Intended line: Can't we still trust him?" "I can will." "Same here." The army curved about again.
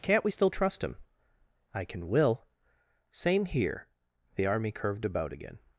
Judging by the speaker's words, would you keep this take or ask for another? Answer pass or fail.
pass